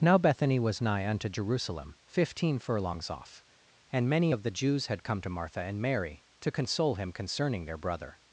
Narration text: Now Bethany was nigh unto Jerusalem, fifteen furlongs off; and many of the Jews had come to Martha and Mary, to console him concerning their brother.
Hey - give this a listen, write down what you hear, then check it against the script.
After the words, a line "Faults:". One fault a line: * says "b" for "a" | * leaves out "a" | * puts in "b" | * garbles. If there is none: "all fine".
Now Bethany was nigh unto Jerusalem, fifteen furlongs off; and many of the Jews had come to Martha and Mary, to console him concerning their brother.
Faults:
all fine